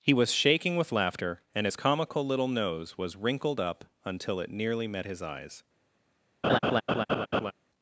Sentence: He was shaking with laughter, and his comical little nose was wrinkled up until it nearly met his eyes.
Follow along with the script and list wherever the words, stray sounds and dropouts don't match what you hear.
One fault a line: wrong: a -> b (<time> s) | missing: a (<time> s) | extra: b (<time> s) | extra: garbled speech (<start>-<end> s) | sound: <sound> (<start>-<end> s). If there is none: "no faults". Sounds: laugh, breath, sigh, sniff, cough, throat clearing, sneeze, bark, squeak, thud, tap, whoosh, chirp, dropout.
sound: laugh (6.4-7.5 s)